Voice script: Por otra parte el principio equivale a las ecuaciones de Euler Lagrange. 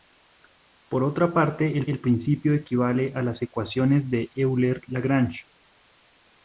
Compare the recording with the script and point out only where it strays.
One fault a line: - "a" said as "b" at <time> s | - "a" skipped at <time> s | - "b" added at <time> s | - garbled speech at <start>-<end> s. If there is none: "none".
- "el" added at 1.9 s